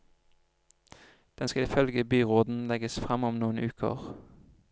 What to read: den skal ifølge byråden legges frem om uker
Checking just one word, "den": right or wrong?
right